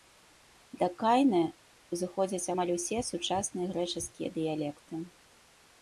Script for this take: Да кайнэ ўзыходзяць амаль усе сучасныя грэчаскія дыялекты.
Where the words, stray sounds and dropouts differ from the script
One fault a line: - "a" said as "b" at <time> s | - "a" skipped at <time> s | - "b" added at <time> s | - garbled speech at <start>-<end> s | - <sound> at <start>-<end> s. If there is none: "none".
none